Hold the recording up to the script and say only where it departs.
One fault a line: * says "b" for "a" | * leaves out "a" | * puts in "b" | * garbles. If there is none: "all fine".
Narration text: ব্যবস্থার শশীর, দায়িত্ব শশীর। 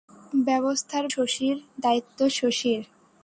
all fine